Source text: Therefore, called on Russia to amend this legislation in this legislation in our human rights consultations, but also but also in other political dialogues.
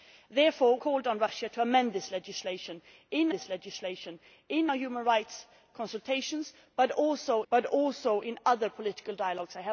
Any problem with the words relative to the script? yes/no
no